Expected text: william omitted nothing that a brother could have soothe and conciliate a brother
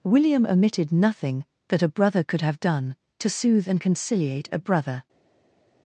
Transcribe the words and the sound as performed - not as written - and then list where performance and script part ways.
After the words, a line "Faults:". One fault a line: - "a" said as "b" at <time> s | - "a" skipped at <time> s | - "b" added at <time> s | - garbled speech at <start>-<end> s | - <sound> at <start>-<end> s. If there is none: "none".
william omitted nothing that a brother could have done to soothe and conciliate a brother
Faults:
- "done to" added at 2.6 s